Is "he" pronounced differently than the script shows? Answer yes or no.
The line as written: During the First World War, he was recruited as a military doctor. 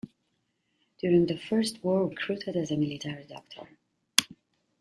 yes